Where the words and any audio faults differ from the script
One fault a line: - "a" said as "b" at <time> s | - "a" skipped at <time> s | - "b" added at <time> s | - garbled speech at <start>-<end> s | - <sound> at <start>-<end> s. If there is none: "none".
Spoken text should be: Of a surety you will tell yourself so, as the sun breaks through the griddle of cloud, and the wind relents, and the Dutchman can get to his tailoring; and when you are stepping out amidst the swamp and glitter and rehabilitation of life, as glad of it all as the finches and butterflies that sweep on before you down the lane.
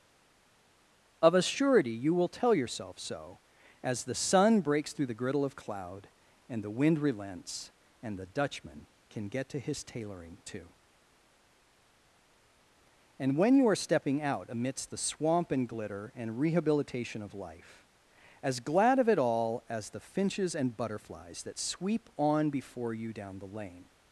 - "too" added at 10.4 s